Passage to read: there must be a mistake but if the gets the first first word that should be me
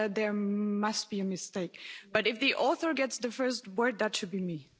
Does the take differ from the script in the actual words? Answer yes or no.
yes